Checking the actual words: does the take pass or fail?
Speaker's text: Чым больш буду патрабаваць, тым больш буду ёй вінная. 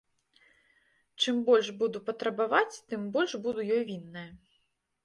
pass